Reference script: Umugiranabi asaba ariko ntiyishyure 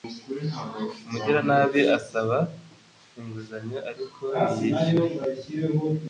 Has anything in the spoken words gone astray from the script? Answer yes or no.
yes